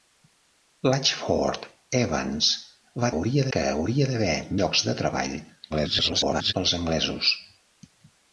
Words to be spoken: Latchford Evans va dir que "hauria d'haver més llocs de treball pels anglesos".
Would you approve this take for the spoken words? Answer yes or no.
no